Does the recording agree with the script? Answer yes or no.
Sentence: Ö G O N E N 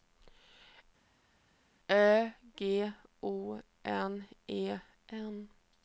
yes